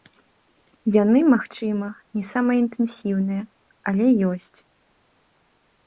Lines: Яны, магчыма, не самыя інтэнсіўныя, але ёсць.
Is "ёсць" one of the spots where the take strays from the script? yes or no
no